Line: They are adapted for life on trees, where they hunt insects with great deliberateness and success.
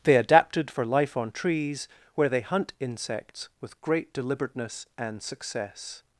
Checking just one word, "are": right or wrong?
wrong